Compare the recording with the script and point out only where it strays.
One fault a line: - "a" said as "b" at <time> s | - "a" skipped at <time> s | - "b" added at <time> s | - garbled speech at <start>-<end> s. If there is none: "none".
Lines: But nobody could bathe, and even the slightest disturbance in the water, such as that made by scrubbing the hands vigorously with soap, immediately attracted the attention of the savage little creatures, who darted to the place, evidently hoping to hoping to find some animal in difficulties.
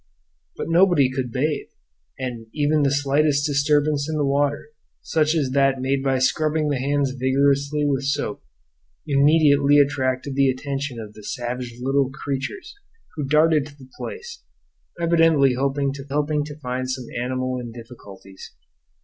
none